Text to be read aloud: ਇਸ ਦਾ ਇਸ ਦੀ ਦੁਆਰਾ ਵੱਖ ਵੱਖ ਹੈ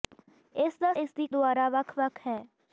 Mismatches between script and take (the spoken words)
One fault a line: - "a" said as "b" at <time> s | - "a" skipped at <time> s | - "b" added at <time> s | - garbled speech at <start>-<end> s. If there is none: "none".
none